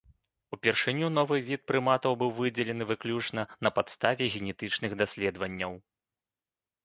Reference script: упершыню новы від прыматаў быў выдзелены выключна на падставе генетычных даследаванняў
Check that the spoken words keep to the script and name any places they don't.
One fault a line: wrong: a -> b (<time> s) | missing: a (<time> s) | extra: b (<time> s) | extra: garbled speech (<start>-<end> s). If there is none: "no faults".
no faults